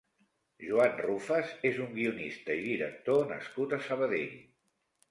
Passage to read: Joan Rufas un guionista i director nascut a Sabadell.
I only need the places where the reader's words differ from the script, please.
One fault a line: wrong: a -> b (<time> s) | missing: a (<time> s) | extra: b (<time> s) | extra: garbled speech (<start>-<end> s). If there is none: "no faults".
extra: és (1.7 s)